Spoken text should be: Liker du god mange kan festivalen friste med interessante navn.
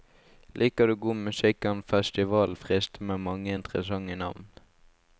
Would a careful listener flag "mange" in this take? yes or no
yes